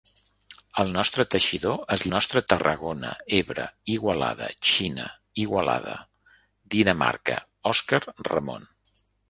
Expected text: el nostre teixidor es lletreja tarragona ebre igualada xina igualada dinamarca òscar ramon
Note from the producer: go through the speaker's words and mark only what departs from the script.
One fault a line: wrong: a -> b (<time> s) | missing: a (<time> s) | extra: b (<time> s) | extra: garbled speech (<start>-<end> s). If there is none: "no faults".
wrong: lletreja -> nostre (2.1 s)